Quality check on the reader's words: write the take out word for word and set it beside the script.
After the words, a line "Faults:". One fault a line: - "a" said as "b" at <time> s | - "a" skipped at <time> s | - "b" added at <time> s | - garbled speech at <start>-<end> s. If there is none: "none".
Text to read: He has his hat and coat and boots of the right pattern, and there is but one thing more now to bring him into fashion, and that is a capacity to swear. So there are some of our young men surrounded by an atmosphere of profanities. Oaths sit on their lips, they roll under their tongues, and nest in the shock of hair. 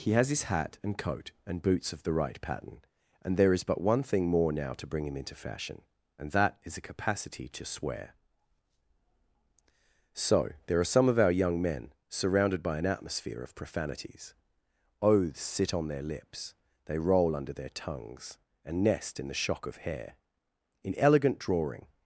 He has his hat and coat and boots of the right pattern, and there is but one thing more now to bring him into fashion, and that is a capacity to swear. So there are some of our young men surrounded by an atmosphere of profanities. Oaths sit on their lips, they roll under their tongues, and nest in the shock of hair. In elegant drawing
Faults:
- "In elegant drawing" added at 20.8 s